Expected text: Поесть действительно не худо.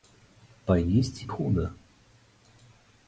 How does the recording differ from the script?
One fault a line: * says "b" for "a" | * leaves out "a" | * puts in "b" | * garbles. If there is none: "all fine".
* leaves out "действительно не"